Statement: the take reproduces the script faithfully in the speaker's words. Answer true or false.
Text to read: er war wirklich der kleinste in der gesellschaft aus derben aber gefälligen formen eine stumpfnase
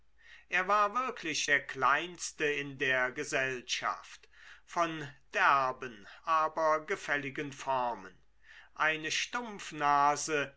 false